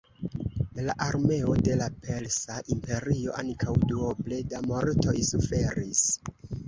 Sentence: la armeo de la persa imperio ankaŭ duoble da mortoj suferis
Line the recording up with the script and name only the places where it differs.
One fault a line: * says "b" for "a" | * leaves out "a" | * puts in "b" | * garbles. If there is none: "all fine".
all fine